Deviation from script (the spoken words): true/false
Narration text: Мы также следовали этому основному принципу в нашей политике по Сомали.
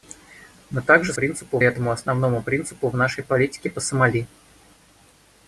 true